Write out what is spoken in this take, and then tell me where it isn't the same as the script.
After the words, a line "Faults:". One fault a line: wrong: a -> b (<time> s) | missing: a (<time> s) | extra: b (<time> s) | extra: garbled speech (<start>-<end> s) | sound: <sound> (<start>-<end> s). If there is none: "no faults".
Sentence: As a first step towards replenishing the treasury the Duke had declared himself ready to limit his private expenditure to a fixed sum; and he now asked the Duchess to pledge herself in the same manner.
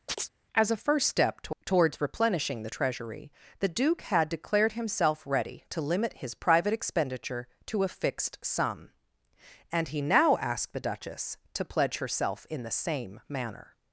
As a first step to towards replenishing the treasury the Duke had declared himself ready to limit his private expenditure to a fixed sum; and he now asked the Duchess to pledge herself in the same manner.
Faults:
sound: chirp (0.1-0.3 s)
extra: to (1.4 s)